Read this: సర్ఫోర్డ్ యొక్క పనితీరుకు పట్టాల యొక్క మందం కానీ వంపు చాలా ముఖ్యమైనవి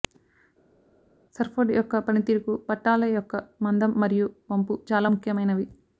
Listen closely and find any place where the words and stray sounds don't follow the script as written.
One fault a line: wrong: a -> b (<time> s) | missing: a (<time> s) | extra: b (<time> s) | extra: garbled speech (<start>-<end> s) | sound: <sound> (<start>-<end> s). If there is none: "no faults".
wrong: కానీ -> మరియు (4.0 s)